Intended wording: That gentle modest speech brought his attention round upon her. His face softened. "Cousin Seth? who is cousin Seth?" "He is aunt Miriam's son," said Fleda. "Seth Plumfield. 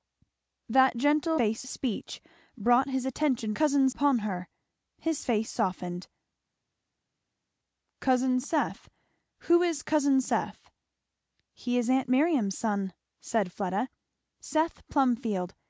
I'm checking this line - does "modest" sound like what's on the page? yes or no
no